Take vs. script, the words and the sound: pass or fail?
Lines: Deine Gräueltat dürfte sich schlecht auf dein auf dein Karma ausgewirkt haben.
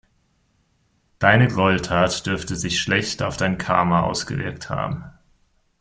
fail